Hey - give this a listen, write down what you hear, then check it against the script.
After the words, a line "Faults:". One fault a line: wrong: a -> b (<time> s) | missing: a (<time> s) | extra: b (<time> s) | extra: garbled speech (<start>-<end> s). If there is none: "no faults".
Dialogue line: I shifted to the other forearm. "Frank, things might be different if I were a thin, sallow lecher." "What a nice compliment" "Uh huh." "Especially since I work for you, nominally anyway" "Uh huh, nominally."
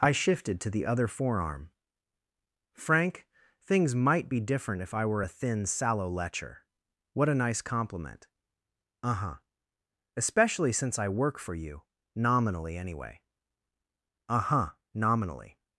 I shifted to the other forearm. "Frank, things might be different if I were a thin, sallow lecher." "What a nice compliment" "Uh huh." "Especially since I work for you, nominally anyway" "Uh huh, nominally."
Faults:
no faults